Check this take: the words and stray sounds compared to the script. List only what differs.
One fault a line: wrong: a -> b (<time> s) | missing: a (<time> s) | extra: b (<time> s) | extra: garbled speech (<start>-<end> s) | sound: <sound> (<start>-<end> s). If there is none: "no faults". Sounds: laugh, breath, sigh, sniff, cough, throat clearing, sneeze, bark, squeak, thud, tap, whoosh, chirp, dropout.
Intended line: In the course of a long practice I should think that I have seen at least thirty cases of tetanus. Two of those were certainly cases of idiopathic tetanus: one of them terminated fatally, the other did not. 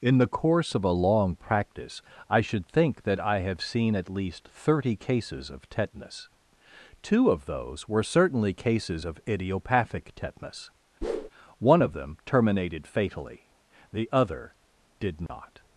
sound: whoosh (11.0-11.3 s)
sound: dropout (15.3-15.3 s)